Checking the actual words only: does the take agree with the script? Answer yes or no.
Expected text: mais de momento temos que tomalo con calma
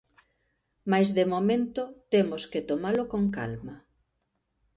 yes